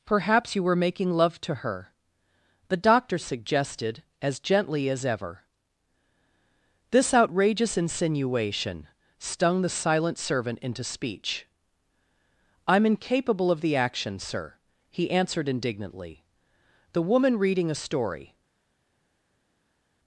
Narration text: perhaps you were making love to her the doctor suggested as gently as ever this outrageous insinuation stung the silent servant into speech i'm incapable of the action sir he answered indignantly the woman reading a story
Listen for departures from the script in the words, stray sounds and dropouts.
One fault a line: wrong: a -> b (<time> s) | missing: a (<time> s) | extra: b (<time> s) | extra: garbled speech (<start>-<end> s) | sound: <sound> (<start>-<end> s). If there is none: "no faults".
no faults